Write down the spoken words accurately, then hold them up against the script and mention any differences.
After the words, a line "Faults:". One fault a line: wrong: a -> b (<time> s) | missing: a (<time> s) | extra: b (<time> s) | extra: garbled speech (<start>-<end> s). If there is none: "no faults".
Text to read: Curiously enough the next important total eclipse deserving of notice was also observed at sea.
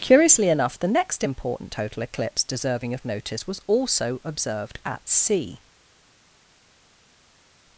Curiously enough the next important total eclipse deserving of notice was also observed at sea.
Faults:
no faults